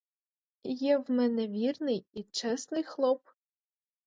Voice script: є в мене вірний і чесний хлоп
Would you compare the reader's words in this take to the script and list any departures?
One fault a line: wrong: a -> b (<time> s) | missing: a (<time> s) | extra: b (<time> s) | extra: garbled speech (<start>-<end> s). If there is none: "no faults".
no faults